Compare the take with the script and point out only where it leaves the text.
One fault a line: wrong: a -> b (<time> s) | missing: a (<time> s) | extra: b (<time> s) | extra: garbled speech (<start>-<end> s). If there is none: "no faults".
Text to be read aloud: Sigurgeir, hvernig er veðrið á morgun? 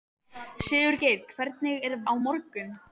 missing: veðrið (2.0 s)